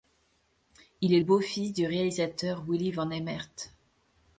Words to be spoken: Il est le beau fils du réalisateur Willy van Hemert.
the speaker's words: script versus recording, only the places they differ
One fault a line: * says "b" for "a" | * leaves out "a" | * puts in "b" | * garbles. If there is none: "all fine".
* leaves out "le"